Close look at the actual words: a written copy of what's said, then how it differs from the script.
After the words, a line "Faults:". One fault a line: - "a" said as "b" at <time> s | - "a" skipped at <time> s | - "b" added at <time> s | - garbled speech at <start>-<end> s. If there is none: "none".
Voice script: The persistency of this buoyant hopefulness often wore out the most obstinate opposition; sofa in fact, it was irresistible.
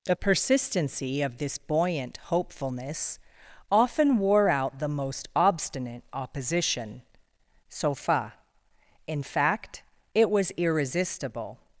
The persistency of this buoyant hopefulness often wore out the most obstinate opposition; sofa in fact, it was irresistible.
Faults:
none